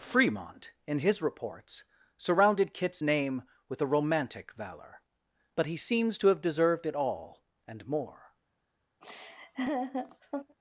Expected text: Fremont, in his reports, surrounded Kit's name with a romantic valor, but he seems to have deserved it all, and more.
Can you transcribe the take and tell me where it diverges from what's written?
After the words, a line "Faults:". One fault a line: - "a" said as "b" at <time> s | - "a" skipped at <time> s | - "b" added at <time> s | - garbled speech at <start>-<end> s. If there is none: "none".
Fremont, in his reports, surrounded Kit's name with a romantic valor, but he seems to have deserved it all, and more.
Faults:
none